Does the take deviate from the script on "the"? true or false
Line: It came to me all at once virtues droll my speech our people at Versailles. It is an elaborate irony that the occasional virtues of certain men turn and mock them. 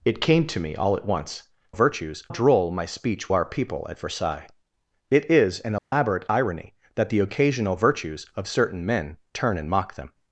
false